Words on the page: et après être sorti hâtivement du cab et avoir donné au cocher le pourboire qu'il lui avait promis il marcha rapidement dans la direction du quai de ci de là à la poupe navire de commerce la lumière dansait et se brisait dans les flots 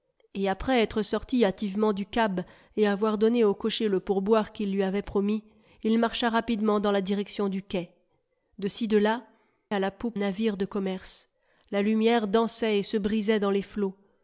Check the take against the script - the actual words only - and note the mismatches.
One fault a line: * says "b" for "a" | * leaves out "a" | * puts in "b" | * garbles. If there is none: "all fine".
all fine